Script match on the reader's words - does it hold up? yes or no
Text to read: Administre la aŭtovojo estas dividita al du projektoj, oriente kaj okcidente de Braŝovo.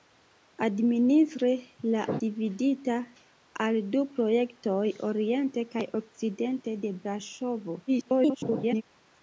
no